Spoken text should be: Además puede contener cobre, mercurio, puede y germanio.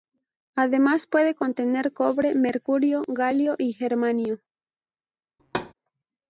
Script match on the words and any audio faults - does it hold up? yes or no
no